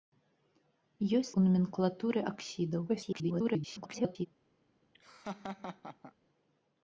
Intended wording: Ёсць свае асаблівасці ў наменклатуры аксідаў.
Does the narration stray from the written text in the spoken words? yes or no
yes